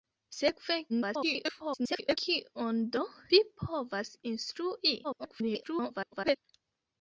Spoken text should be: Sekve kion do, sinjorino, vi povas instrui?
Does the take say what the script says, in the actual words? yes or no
no